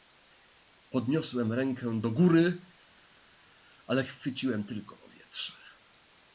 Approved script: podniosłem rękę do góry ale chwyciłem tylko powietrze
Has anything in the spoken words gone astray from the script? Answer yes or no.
no